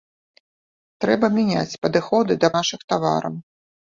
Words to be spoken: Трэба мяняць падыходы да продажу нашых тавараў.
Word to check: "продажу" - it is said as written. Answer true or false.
false